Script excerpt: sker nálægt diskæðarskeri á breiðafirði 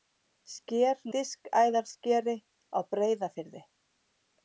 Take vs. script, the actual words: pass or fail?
fail